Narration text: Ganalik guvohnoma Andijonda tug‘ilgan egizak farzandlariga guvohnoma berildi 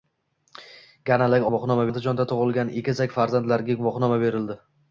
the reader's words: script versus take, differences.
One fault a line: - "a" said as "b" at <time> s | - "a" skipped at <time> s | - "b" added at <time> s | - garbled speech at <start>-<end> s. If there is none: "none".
none